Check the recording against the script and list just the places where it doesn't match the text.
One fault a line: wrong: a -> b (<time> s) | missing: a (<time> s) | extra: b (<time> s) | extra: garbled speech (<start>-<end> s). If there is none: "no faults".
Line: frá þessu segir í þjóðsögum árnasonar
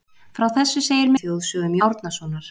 no faults